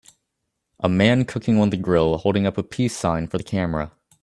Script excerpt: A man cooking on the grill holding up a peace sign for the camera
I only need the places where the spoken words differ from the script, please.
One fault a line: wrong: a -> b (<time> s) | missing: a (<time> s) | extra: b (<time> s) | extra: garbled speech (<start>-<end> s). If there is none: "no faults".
no faults